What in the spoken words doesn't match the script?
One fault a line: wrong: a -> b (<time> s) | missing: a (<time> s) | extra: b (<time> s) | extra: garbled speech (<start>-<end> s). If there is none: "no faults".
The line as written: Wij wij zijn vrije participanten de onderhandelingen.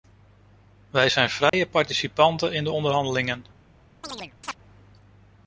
missing: wij (1.1 s)
extra: in (2.5 s)